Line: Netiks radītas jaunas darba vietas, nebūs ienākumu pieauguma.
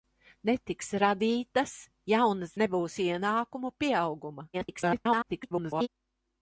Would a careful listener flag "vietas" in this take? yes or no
yes